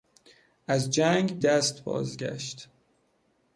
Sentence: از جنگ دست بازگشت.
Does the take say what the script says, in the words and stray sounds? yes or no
yes